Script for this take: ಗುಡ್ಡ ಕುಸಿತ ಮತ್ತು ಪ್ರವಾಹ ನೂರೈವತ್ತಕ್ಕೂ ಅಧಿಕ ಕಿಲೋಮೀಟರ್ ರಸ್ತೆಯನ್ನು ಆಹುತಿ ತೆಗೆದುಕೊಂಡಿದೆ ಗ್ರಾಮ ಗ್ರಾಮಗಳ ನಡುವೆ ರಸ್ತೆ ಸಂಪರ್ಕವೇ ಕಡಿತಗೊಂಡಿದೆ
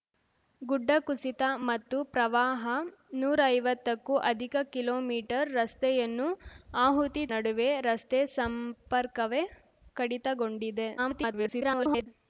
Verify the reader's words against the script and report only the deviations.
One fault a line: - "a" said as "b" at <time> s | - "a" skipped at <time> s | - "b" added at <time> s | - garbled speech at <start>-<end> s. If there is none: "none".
- "ತೆಗೆದುಕೊಂಡಿದೆ ಗ್ರಾಮ ಗ್ರಾಮಗಳ" skipped at 7.2 s
- garbled speech at 11.0-12.1 s